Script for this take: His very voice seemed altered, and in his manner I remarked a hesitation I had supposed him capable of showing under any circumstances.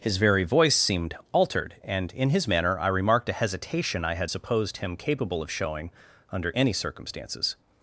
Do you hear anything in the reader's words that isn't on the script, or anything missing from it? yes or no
no